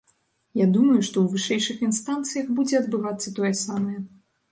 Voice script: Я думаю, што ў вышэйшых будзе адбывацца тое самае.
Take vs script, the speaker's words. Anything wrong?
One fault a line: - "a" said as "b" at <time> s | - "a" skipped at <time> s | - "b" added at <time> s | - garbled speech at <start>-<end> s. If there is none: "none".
- "інстанцыях" added at 1.9 s